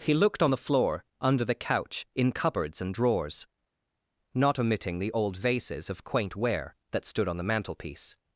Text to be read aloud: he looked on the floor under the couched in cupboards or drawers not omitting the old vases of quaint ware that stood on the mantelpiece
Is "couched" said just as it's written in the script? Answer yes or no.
no